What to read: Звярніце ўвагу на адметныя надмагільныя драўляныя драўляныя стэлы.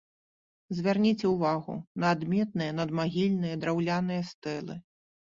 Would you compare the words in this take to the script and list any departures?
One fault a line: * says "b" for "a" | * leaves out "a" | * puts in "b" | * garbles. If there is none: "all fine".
* leaves out "драўляныя"